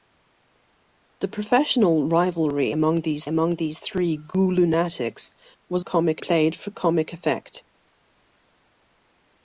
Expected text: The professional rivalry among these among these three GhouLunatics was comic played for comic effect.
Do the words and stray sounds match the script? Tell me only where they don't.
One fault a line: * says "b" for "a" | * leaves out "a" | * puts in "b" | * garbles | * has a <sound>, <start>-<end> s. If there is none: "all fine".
all fine